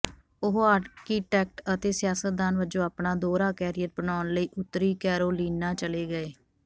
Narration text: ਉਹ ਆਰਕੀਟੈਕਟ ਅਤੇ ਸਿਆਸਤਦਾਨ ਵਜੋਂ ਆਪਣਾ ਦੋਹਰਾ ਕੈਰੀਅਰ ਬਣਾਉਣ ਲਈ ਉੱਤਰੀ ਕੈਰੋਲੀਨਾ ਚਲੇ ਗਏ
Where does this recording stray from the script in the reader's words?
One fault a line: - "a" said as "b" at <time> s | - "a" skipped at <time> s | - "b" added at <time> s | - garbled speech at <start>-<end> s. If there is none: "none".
none